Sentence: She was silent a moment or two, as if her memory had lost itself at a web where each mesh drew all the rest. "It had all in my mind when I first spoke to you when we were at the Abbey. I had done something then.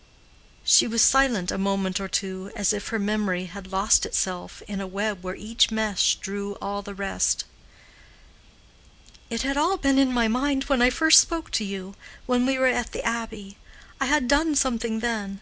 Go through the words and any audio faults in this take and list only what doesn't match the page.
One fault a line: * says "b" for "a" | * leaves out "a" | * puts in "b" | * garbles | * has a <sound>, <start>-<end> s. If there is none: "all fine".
* says "in" for "at"
* puts in "been"